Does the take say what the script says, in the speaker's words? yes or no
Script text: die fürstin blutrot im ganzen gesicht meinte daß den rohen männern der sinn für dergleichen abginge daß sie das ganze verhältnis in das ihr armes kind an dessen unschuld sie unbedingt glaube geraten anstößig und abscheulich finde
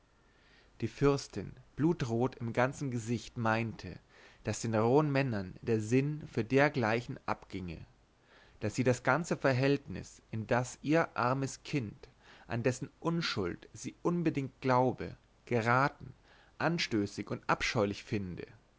yes